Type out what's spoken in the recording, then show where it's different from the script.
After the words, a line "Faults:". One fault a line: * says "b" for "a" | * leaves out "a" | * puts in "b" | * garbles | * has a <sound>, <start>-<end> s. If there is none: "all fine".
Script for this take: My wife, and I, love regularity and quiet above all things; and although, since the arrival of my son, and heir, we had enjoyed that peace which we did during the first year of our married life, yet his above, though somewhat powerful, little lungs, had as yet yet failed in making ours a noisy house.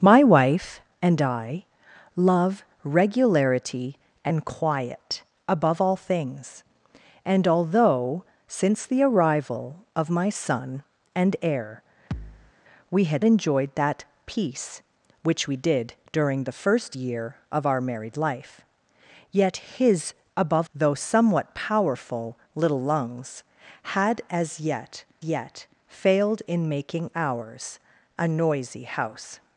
My wife, and I, love regularity and quiet above all things; and although, since the arrival of my son, and heir, we had enjoyed that peace which we did during the first year of our married life, yet his above, though somewhat powerful, little lungs, had as yet yet failed in making ours a noisy house.
Faults:
* has a thud, 12.1-12.5 s